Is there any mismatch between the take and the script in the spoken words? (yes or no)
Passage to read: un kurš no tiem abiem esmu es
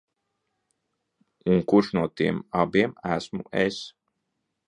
no